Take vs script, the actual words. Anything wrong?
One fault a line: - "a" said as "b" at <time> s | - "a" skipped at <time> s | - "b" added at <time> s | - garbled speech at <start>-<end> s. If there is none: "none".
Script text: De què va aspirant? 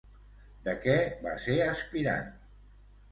- "ser" added at 1.4 s